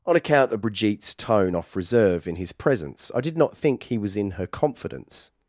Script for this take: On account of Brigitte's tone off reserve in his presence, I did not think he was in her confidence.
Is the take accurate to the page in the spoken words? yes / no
yes